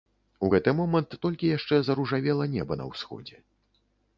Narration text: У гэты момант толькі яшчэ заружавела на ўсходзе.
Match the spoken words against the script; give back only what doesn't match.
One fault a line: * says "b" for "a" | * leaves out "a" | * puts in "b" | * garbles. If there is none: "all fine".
* puts in "неба"